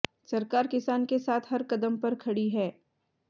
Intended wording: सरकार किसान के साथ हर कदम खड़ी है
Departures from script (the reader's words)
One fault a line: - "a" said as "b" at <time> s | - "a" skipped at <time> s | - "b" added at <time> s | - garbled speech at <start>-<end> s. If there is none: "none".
- "पर" added at 2.0 s